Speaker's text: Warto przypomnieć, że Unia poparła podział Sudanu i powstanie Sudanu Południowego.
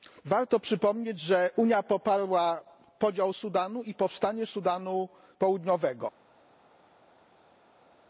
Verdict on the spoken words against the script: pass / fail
pass